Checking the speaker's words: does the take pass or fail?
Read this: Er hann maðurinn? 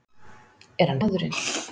pass